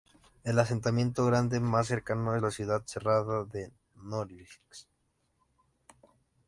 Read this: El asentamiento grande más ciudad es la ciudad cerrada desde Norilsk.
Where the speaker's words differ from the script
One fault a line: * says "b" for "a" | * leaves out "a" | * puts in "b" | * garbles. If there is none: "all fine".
* says "cercano" for "ciudad"
* says "de" for "desde"